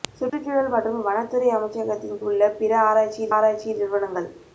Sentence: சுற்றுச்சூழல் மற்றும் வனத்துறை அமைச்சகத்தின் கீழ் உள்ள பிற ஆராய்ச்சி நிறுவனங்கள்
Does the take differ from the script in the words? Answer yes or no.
yes